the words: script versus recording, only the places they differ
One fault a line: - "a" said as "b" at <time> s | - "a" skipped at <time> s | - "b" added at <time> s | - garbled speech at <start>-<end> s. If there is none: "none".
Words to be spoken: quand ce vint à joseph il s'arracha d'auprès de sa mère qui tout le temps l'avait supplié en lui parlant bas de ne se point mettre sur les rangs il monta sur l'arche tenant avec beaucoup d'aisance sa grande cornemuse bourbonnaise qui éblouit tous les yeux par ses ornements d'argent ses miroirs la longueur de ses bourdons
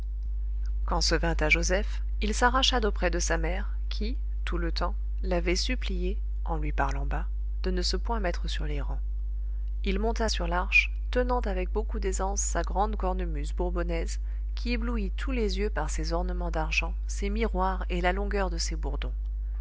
- "et" added at 17.9 s